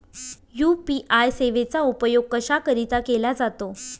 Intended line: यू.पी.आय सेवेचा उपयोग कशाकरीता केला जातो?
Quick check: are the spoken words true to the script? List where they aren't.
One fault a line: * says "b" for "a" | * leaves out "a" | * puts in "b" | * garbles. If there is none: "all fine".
all fine